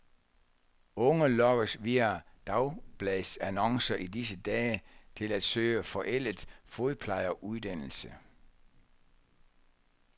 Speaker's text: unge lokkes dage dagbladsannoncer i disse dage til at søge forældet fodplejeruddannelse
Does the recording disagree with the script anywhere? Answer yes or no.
yes